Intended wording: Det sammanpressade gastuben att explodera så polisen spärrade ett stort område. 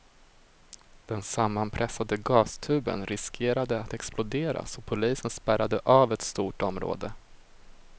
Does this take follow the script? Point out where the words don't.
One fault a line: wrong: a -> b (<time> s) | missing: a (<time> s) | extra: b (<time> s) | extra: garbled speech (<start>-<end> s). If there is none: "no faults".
wrong: Det -> Den (1.1 s)
extra: riskerade (3.0 s)
extra: av (5.8 s)